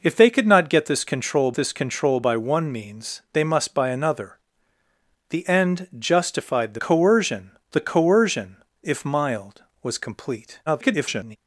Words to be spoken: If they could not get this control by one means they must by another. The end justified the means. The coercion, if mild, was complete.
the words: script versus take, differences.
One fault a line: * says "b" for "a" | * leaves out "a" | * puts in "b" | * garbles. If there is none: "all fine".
* puts in "this control"
* says "coercion" for "means"
* garbles